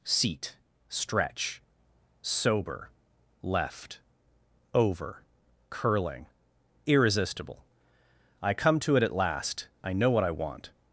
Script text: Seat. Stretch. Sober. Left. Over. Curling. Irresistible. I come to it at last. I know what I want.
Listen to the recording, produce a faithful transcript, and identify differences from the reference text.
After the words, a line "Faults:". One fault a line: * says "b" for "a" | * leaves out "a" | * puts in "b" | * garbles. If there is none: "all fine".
Seat. Stretch. Sober. Left. Over. Curling. Irresistible. I come to it at last. I know what I want.
Faults:
all fine